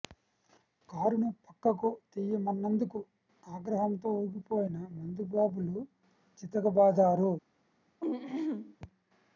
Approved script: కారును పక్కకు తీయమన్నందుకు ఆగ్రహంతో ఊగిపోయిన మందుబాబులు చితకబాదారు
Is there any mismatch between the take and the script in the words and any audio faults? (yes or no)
yes